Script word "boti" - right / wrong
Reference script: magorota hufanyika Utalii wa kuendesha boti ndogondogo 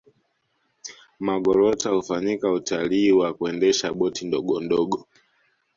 right